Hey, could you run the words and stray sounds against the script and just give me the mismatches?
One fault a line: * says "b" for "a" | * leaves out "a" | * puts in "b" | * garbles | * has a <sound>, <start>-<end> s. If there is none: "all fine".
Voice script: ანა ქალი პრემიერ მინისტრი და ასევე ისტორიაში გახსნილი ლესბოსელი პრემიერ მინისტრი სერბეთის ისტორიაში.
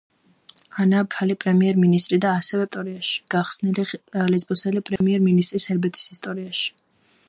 * has a dropout, 5.0-5.0 s